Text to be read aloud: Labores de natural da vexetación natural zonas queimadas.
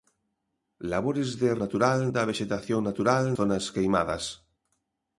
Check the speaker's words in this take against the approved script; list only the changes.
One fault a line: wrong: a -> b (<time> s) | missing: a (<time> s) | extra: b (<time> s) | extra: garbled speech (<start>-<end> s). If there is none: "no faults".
no faults